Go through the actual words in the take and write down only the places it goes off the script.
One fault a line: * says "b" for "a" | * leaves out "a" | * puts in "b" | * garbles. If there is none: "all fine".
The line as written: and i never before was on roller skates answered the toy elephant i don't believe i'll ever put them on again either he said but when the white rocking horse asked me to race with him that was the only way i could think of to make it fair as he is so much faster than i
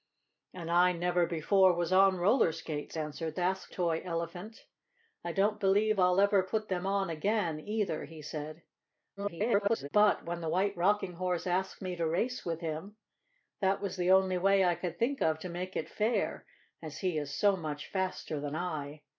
* says "asked" for "the"
* garbles